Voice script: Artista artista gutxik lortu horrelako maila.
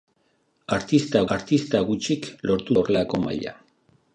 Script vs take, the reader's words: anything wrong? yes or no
no